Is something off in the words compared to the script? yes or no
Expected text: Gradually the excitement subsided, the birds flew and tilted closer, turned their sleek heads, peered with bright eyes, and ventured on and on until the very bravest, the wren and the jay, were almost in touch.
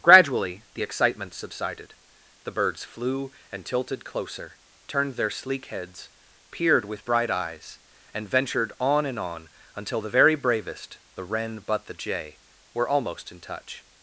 yes